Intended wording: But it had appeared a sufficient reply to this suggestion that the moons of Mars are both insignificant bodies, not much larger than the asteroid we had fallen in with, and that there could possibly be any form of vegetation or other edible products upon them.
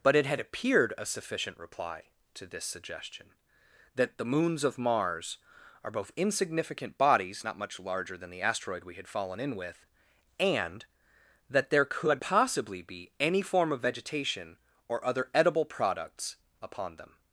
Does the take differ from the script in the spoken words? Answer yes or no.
no